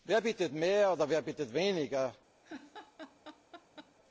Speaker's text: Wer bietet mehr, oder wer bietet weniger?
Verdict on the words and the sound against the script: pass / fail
fail